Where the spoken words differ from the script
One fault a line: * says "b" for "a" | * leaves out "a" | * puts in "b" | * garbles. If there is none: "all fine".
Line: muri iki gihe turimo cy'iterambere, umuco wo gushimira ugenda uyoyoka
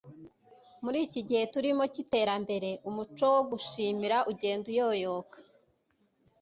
all fine